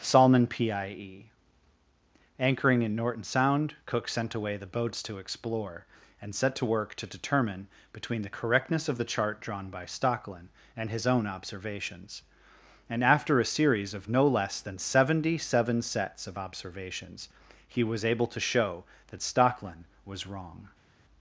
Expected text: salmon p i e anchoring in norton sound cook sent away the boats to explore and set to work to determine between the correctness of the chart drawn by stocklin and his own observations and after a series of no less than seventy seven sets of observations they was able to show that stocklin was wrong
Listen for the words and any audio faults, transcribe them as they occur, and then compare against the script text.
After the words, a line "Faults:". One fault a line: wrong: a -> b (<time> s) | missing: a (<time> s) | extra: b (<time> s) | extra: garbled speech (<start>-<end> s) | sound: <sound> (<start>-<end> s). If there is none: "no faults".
salmon p i e anchoring in norton sound cook sent away the boats to explore and set to work to determine between the correctness of the chart drawn by stocklin and his own observations and after a series of no less than seventy seven sets of observations he was able to show that stocklin was wrong
Faults:
wrong: they -> he (17.7 s)